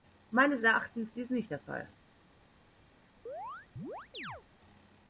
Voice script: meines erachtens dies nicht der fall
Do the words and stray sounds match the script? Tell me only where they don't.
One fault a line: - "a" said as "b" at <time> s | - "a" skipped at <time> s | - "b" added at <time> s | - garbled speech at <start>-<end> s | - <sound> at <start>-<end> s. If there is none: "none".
- chirp at 3.3-4.4 s